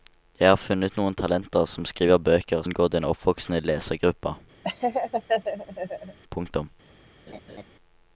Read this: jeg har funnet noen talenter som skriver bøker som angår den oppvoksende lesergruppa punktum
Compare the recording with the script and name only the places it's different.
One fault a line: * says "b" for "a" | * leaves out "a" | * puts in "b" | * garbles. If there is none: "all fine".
* leaves out "som"